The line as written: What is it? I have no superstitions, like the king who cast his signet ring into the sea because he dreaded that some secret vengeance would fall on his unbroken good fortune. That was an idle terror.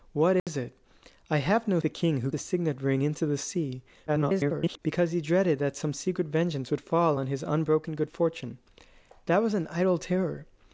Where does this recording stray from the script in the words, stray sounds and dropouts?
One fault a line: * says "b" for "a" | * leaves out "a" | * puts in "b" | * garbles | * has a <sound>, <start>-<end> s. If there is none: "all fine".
* has a dropout, 0.4-0.5 s
* leaves out "superstitions like"
* leaves out "cast"
* garbles